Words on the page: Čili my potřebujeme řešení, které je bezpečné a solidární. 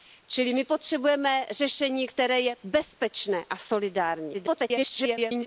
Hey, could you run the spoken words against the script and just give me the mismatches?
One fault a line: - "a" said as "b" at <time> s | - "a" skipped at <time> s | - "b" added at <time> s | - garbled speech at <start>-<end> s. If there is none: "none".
- garbled speech at 4.3-5.5 s